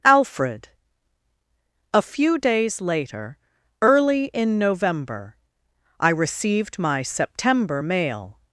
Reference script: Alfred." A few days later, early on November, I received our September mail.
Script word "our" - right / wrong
wrong